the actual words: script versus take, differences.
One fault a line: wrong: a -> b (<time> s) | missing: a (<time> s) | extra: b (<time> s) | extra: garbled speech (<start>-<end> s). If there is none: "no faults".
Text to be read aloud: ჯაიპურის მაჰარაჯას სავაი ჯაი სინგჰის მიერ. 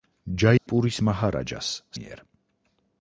missing: სავაი ჯაი სინგჰის (1.7 s)